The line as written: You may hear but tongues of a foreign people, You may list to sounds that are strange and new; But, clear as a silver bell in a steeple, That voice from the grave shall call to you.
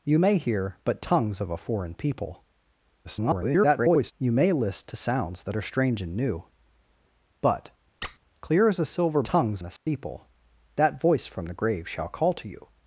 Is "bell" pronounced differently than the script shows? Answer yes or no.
yes